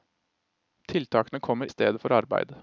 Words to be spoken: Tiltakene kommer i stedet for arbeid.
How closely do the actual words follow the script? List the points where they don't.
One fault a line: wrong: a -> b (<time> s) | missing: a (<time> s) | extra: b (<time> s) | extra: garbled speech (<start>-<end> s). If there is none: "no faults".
no faults